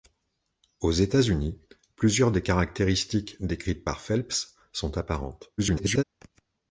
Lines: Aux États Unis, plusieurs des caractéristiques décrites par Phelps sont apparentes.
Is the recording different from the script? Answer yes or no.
yes